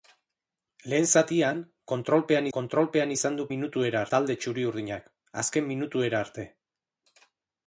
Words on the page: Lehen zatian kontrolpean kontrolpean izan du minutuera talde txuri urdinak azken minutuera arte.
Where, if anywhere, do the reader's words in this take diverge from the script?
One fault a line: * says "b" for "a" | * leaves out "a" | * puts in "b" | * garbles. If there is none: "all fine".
all fine